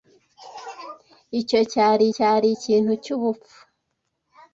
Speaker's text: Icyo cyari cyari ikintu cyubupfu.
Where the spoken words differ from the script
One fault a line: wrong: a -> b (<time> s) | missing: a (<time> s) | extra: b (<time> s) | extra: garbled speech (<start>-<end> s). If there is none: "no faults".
no faults